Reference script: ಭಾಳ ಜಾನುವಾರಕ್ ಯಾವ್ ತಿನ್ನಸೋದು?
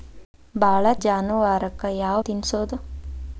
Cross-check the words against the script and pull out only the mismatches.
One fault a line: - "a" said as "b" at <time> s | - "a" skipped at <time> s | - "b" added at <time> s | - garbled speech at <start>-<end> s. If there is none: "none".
none